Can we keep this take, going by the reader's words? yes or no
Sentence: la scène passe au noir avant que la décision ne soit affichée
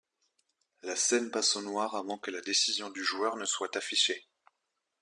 no